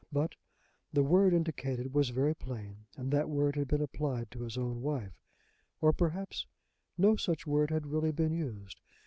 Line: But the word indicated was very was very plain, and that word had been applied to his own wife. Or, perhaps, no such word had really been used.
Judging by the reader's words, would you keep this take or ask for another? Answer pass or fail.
fail